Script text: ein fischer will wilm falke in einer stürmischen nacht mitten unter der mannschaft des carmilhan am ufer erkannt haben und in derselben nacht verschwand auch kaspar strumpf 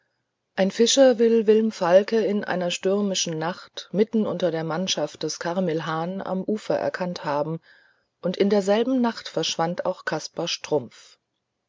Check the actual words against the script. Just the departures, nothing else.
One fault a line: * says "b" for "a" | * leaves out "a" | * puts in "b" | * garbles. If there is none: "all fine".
all fine